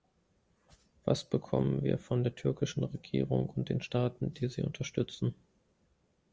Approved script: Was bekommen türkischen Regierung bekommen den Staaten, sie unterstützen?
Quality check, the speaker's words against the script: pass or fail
fail